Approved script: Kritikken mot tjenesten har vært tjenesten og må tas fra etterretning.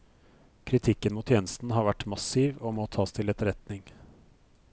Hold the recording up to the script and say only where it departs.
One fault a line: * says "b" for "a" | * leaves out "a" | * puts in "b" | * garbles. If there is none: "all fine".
* says "massiv" for "tjenesten"
* says "til" for "fra"